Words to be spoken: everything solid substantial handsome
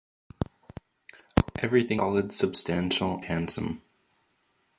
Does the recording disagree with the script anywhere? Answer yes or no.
no